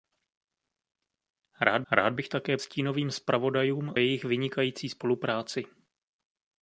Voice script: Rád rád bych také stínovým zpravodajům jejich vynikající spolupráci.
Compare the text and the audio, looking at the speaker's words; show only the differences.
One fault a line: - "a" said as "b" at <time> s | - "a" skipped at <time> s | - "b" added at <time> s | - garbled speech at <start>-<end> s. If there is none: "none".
none